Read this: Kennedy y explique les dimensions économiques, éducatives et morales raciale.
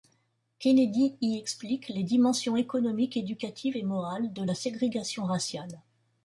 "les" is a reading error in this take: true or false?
false